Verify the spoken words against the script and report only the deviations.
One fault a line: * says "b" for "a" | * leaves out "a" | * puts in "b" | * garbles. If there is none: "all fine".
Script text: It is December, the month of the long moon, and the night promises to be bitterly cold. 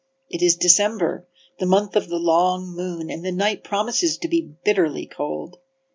all fine